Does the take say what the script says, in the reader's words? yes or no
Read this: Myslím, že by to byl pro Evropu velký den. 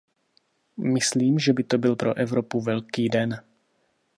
yes